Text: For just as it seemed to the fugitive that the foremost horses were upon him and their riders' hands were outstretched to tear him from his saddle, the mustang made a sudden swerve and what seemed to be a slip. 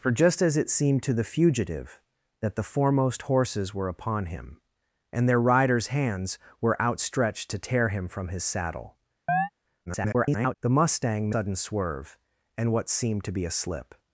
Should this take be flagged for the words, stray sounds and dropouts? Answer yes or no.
yes